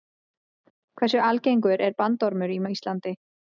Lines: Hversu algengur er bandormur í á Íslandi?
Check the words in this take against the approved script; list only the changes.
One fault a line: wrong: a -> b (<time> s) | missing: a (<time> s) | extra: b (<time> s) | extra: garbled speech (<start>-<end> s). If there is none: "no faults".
no faults